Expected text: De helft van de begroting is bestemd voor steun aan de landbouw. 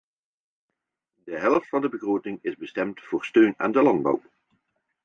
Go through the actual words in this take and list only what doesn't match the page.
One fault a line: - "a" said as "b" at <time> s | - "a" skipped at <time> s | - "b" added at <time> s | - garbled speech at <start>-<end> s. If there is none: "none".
none